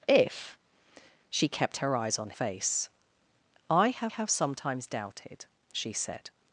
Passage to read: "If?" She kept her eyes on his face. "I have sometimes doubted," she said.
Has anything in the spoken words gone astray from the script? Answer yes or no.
yes